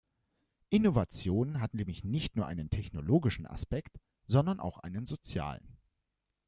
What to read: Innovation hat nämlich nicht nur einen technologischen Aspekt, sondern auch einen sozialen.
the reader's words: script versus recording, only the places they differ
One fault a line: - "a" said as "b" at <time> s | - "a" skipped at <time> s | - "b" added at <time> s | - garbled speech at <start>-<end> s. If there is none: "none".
none